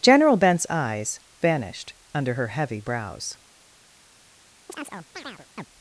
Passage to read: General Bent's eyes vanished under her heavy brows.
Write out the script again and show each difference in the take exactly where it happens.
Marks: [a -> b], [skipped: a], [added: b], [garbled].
General Bent's eyes vanished under her heavy brows.